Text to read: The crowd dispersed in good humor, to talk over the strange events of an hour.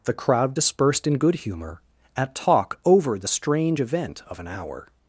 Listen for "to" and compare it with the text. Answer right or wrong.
wrong